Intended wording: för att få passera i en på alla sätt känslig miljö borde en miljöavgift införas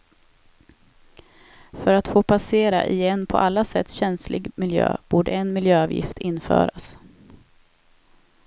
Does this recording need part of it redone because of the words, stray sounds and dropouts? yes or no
no